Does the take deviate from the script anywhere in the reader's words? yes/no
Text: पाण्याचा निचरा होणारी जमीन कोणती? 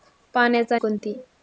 yes